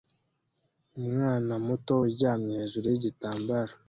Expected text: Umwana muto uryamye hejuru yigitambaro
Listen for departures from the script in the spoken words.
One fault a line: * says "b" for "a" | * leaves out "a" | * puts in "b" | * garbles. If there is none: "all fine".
all fine